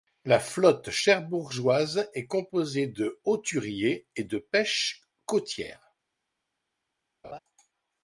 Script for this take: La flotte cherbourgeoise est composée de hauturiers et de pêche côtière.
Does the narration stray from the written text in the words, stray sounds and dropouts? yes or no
yes